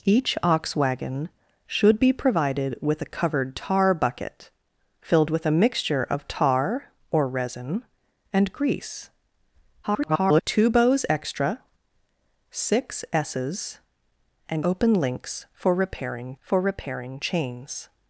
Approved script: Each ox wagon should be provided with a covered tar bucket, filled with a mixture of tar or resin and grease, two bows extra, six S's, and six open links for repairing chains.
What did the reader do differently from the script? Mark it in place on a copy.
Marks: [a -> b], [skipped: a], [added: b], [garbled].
Each ox wagon should be provided with a covered tar bucket, filled with a mixture of tar or resin and grease, [garbled] two bows extra, six S's, and [skipped: six] open links for repairing [added: for repairing] chains.